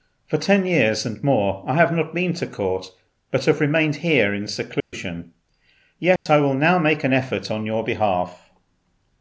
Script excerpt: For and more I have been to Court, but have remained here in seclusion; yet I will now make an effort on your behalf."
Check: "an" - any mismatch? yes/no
no